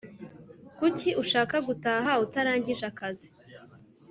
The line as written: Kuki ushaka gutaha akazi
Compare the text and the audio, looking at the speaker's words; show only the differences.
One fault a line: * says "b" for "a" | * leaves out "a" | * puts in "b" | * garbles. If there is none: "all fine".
* puts in "utarangije"